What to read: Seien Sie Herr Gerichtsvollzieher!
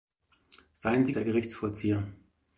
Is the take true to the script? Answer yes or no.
yes